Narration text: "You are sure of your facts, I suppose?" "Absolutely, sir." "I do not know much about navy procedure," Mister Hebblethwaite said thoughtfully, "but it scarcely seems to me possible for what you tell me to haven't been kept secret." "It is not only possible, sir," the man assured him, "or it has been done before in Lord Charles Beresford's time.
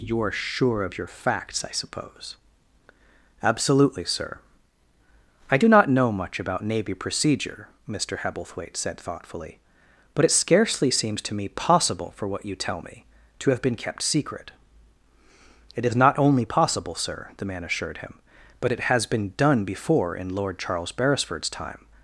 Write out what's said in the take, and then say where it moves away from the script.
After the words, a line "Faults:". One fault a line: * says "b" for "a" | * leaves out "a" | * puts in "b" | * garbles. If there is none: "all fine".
"You are sure of your facts, I suppose?" "Absolutely, sir." "I do not know much about navy procedure," Mister Hebblethwaite said thoughtfully, "but it scarcely seems to me possible for what you tell me to have been kept secret." "It is not only possible, sir," the man assured him, "but it has been done before in Lord Charles Beresford's time.
Faults:
* says "have" for "haven't"
* says "but" for "or"